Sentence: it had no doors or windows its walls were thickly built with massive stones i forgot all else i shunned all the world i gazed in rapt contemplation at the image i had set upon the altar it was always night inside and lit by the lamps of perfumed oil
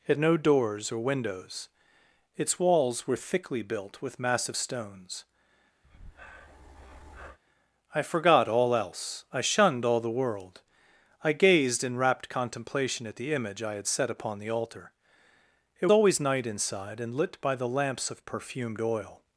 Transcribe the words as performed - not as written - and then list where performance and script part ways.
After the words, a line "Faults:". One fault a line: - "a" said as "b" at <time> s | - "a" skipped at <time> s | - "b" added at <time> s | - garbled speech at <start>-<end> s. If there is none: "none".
it no doors or windows its walls were thickly built with massive stones i forgot all else i shunned all the world i gazed in rapt contemplation at the image i had set upon the altar it always night inside and lit by the lamps of perfumed oil
Faults:
- "had" skipped at 0.2 s
- "was" skipped at 15.9 s